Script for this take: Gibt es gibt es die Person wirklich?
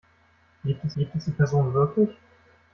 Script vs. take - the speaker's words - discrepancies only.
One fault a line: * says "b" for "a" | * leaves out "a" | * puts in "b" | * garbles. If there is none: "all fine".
all fine